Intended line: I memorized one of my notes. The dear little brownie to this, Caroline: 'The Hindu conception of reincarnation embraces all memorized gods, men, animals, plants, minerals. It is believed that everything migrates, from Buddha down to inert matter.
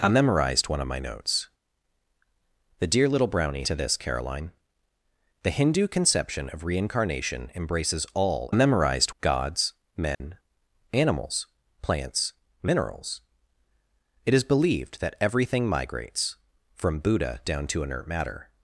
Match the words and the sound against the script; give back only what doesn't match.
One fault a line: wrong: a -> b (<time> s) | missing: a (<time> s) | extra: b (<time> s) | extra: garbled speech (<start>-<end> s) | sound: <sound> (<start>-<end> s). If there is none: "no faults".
sound: dropout (10.1-10.2 s)